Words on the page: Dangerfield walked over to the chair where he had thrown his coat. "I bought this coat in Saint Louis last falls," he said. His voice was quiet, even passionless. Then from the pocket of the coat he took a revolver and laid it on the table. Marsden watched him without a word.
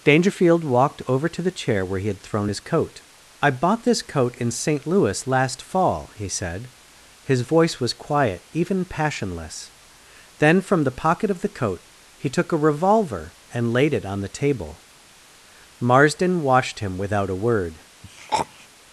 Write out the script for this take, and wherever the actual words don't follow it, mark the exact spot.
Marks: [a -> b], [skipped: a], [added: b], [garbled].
Dangerfield walked over to the chair where he had thrown his coat. "I bought this coat in Saint Louis last [falls," -> fall] he said. His voice was quiet, even passionless. Then from the pocket of the coat he took a revolver and laid it on the table. Marsden watched him without a word.